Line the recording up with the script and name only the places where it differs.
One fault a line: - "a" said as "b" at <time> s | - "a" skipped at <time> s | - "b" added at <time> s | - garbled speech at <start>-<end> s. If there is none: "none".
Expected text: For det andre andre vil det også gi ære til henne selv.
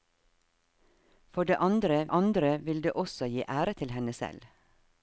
none